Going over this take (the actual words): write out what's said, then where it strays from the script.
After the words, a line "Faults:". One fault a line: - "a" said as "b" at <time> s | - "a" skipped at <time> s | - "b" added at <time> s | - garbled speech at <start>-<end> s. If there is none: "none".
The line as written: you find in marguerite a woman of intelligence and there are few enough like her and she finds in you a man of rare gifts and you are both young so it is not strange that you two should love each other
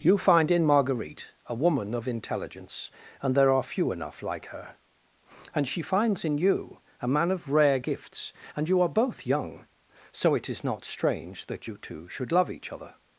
you find in marguerite a woman of intelligence and there are few enough like her and she finds in you a man of rare gifts and you are both young so it is not strange that you two should love each other
Faults:
none